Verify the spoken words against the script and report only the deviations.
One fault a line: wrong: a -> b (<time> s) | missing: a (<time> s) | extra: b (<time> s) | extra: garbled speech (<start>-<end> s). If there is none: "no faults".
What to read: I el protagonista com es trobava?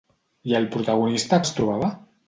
missing: com (1.4 s)